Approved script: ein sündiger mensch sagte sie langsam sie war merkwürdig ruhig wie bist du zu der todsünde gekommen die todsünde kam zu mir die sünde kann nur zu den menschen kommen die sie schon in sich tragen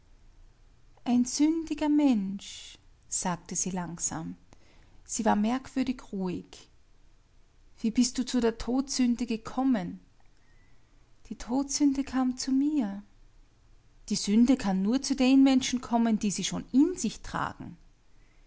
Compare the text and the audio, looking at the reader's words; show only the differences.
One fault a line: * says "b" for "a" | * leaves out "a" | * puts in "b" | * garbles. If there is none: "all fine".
all fine